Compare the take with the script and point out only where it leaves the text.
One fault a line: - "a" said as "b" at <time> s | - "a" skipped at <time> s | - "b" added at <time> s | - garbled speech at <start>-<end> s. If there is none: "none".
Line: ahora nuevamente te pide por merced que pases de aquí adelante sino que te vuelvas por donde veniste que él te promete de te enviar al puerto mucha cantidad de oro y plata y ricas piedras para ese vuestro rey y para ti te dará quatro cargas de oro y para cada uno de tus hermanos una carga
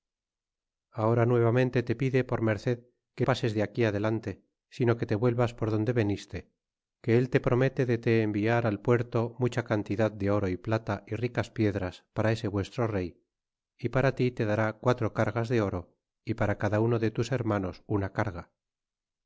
none